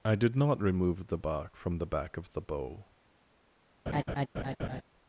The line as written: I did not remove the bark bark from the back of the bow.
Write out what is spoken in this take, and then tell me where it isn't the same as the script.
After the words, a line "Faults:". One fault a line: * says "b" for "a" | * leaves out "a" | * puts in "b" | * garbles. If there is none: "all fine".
I did not remove the bark from the back of the bow.
Faults:
* leaves out "bark"